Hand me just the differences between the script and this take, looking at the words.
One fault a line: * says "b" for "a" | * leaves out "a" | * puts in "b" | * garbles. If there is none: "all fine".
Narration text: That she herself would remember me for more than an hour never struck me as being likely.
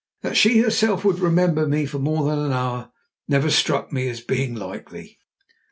all fine